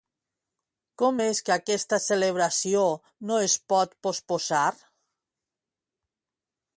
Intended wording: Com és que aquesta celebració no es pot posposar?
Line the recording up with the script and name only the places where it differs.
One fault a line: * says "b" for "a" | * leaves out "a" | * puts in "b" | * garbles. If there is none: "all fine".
all fine